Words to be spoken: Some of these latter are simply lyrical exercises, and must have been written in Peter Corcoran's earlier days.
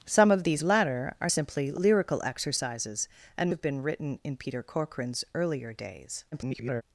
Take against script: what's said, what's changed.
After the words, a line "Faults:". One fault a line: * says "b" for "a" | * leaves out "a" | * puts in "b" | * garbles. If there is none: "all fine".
Some of these latter are simply lyrical exercises, and have been written in Peter Corcoran's earlier days. [garbled]
Faults:
* leaves out "must"
* garbles